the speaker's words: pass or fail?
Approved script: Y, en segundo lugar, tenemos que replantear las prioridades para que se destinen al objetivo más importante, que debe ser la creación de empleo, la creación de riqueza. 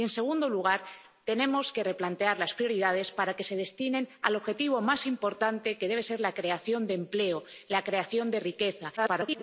fail